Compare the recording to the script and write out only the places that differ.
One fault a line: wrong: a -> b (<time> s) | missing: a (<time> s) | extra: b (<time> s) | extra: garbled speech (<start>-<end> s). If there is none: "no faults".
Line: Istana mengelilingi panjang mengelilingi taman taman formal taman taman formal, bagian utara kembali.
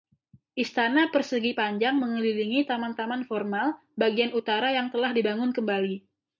wrong: mengelilingi -> persegi (1.1 s)
wrong: taman taman formal bagian utara -> bagian utara yang telah dibangun (4.0 s)